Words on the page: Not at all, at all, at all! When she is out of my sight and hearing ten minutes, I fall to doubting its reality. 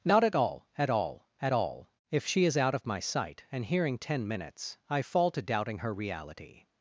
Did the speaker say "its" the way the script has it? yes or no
no